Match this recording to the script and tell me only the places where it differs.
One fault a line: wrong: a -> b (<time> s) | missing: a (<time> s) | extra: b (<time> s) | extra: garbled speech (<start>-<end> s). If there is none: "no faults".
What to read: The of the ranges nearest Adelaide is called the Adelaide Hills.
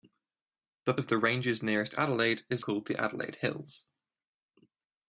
no faults